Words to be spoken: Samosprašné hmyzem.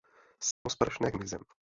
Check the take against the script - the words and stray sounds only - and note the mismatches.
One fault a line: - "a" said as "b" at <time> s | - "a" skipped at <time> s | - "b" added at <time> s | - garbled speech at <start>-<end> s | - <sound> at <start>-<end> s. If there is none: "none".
- dropout at 0.5-0.7 s